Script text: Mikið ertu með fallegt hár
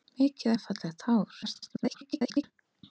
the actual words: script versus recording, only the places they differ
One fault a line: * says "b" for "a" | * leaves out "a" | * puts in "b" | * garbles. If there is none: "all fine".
* leaves out "ertu"
* garbles